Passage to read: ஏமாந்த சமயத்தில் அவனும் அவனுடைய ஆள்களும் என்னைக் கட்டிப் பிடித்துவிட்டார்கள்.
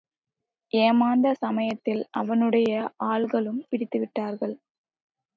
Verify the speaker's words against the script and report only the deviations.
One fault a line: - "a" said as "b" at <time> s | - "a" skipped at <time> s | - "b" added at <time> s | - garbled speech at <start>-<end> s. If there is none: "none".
- "அவனும்" skipped at 2.1 s
- "என்னைக் கட்டிப்" skipped at 3.6 s